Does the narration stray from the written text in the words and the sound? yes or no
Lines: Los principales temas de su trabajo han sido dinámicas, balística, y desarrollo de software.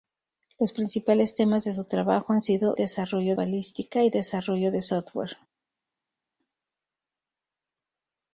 yes